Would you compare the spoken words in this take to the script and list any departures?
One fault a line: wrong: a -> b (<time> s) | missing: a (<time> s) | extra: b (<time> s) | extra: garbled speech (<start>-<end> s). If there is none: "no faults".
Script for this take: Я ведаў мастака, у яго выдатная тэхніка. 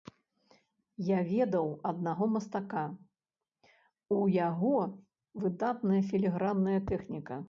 extra: аднаго (1.9 s)
extra: філігранная (6.1 s)